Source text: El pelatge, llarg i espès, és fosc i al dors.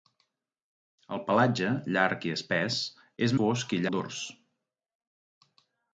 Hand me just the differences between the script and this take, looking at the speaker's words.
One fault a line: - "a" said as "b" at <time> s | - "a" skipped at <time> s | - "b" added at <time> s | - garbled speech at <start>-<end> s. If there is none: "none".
none